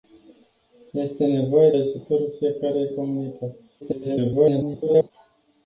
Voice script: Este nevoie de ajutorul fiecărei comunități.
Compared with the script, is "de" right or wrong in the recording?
wrong